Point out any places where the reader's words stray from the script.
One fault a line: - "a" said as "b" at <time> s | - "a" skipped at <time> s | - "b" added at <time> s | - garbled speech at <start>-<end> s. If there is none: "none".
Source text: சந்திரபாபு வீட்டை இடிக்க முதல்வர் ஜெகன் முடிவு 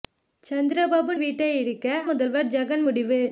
none